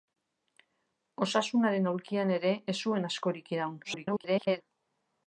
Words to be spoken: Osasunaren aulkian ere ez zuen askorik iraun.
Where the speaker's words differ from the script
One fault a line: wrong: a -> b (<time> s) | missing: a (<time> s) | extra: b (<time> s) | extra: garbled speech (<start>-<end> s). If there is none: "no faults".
extra: garbled speech (3.8-4.6 s)